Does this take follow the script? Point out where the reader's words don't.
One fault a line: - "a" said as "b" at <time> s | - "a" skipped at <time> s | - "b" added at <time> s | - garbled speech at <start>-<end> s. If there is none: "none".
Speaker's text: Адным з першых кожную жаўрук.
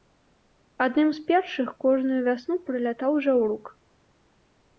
- "вясну прылятаў" added at 2.3 s